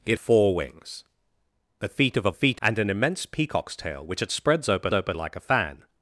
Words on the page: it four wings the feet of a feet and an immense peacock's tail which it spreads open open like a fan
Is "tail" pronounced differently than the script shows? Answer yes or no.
no